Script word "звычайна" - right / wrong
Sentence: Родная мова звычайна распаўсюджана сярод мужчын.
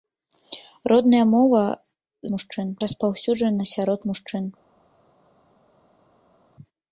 wrong